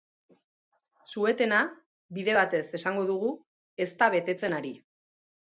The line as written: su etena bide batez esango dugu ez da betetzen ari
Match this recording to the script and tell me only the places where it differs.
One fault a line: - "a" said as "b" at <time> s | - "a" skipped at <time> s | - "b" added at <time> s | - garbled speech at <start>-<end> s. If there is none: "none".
none